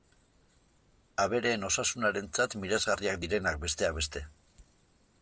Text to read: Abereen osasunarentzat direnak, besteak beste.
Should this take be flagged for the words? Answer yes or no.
yes